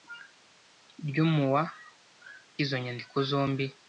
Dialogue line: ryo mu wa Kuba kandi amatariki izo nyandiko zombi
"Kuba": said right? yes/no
no